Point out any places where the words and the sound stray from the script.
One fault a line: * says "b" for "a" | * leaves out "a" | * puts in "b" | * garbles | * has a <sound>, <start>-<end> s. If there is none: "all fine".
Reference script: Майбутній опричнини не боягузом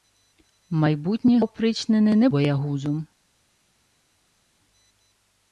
all fine